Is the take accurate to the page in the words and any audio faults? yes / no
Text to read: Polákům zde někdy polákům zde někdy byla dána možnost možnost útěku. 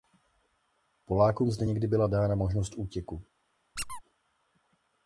no